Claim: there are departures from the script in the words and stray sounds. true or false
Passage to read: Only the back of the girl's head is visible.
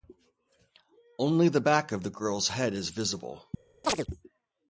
true